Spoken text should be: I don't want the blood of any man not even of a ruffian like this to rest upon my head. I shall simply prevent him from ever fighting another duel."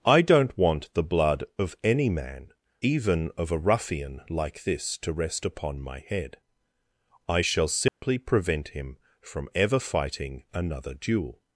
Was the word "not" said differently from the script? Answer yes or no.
yes